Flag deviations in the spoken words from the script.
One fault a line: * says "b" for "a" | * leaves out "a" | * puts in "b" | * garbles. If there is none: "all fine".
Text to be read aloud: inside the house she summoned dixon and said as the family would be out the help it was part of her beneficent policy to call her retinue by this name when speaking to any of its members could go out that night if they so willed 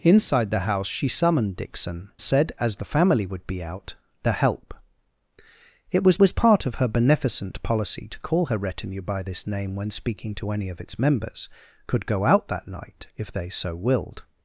* leaves out "and"
* puts in "was"